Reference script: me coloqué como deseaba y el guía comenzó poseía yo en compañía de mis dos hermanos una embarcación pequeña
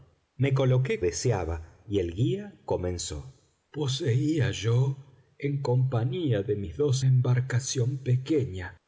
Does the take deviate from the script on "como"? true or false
true